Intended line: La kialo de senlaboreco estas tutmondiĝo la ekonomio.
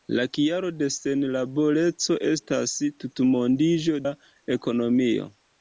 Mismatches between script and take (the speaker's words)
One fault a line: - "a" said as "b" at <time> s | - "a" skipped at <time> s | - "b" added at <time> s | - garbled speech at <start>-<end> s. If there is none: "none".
none